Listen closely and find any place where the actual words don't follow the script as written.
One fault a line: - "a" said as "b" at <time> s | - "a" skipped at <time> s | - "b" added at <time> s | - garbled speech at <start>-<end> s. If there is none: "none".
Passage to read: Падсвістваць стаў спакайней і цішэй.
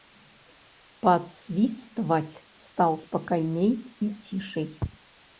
none